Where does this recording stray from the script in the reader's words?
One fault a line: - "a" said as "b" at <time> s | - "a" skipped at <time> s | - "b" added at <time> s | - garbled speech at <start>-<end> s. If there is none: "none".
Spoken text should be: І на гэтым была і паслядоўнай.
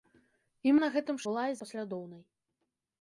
none